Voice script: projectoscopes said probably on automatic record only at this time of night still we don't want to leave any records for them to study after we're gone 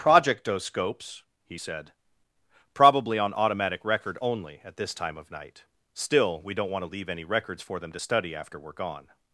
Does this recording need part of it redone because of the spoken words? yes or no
yes